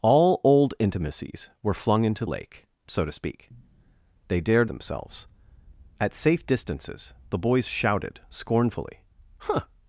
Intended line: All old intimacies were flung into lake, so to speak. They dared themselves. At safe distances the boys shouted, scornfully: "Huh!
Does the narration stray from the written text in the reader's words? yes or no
no